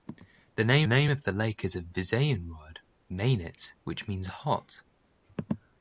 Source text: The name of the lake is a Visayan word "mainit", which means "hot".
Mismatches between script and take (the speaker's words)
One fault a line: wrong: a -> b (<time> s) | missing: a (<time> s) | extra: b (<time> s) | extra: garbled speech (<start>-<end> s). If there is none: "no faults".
extra: name (0.8 s)